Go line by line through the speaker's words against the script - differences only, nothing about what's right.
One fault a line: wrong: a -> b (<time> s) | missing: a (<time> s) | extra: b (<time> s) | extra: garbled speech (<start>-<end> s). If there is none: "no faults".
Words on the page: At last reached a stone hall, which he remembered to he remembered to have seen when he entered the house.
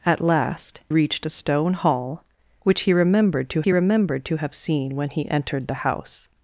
no faults